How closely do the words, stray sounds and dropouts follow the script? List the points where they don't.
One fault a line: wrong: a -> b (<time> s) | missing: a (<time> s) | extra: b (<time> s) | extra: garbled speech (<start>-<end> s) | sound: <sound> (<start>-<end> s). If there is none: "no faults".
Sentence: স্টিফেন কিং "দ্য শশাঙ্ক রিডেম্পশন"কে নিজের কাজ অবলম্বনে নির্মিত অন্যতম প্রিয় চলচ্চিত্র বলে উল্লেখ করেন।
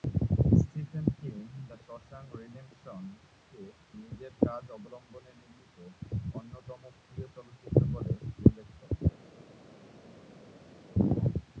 no faults